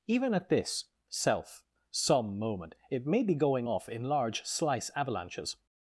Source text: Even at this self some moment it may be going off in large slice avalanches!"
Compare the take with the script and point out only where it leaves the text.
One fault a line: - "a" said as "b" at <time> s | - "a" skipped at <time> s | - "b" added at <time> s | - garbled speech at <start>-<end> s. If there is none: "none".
none